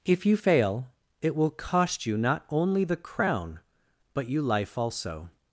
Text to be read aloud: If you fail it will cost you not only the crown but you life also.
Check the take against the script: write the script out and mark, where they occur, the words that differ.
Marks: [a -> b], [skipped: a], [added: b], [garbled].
If you fail it will cost you not only the crown but you life also.